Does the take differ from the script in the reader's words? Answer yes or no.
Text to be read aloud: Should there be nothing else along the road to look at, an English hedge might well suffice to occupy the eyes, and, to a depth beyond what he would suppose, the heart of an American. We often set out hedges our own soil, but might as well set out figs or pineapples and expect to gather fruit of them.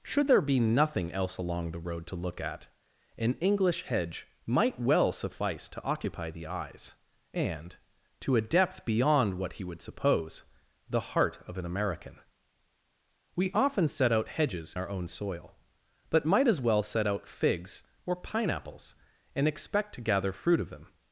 no